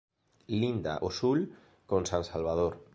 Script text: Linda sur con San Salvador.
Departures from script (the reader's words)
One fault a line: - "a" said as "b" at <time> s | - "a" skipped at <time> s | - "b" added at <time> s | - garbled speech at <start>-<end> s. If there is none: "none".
- "ao" added at 0.9 s